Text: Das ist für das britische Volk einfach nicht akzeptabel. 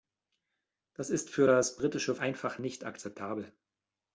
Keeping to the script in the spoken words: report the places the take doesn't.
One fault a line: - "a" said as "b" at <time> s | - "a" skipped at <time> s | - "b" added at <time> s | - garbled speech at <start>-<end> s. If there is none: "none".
- "Volk" skipped at 2.1 s